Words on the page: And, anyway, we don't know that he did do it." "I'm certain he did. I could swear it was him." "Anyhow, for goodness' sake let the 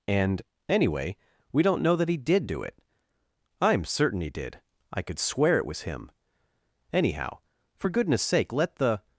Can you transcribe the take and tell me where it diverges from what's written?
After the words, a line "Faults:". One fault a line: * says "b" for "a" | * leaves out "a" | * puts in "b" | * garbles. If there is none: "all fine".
And, anyway, we don't know that he did do it." "I'm certain he did. I could swear it was him." "Anyhow, for goodness' sake let the
Faults:
all fine